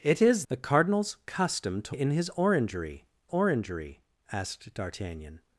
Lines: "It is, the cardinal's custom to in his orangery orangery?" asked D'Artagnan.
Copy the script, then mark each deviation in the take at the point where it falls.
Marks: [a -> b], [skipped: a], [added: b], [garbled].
"It is, the cardinal's custom to in his orangery orangery?" asked D'Artagnan.